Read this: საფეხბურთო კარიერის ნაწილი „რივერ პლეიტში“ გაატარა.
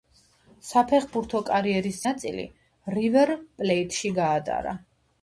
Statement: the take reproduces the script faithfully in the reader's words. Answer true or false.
true